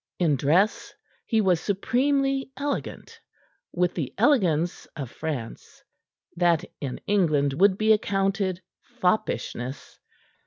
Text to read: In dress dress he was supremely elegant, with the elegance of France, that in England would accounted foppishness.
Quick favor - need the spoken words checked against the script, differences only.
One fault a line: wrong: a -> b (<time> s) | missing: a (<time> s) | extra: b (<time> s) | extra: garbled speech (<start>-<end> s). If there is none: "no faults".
missing: dress (0.9 s)
extra: be (7.8 s)